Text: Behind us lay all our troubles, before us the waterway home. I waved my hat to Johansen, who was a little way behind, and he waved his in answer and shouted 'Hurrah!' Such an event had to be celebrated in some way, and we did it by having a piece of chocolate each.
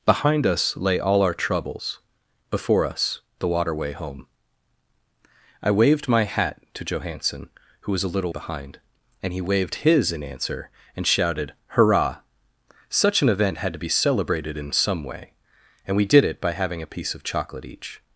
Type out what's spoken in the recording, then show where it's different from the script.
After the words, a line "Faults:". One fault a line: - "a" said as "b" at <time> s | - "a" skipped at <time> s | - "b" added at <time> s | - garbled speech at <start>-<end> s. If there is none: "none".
Behind us lay all our troubles, before us the waterway home. I waved my hat to Johansen, who was a little behind, and he waved his in answer and shouted 'Hurrah!' Such an event had to be celebrated in some way, and we did it by having a piece of chocolate each.
Faults:
- "way" skipped at 8.3 s